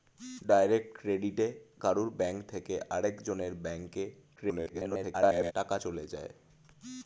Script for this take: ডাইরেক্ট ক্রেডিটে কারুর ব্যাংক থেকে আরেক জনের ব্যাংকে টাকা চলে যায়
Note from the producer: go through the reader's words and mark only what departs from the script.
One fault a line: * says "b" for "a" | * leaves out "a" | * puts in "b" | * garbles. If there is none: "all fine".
* garbles